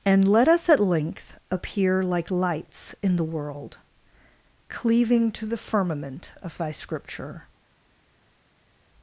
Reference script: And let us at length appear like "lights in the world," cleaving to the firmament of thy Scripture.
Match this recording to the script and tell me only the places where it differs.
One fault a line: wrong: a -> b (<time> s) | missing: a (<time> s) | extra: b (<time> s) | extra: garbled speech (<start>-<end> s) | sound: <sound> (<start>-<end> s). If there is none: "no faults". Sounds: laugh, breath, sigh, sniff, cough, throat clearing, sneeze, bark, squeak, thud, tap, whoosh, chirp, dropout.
no faults